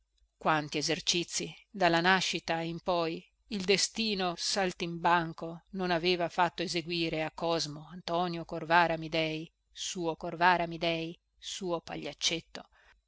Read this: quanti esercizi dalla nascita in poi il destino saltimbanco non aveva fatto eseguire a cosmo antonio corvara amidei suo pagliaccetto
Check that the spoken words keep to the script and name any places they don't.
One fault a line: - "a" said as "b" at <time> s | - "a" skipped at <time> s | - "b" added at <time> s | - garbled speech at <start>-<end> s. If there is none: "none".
- "corvara amidei suo" added at 10.1 s